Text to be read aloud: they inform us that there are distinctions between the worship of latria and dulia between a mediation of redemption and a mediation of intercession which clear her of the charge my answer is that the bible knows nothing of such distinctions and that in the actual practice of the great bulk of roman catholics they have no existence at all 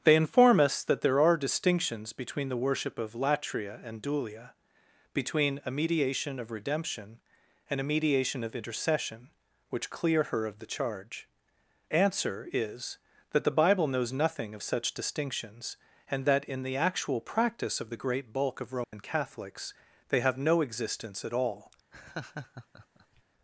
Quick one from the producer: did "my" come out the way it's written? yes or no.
no